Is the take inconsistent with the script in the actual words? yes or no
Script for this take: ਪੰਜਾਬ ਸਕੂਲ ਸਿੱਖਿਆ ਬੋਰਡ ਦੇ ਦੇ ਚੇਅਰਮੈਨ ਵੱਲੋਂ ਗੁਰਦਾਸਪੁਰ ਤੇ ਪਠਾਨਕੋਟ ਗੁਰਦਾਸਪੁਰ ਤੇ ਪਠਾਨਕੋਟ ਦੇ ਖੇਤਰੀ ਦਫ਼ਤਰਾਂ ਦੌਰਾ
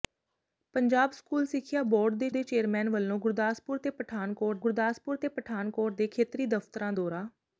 no